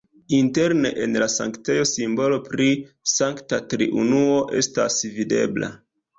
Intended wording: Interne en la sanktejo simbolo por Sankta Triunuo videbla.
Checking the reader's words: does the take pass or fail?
fail